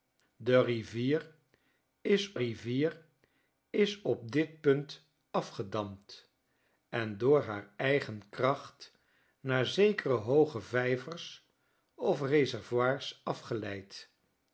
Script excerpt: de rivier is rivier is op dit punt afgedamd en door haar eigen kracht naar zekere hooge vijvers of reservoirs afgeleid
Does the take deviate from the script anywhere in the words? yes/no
no